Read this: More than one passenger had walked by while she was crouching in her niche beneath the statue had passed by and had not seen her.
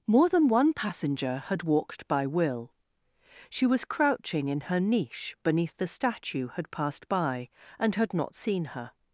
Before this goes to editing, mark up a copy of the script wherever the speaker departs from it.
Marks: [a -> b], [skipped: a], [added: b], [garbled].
More than one passenger had walked by [while -> will] she was crouching in her niche beneath the statue had passed by and had not seen her.